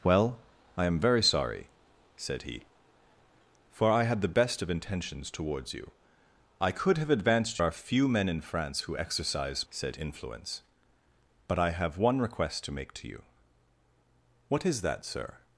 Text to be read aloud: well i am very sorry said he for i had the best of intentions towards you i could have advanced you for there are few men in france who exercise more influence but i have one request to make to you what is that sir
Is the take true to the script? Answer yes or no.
no